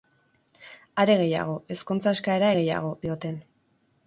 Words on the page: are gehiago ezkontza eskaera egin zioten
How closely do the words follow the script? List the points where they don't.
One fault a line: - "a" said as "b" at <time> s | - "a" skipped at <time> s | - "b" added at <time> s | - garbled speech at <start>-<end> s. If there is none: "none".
- "egin" said as "gehiago" at 2.6 s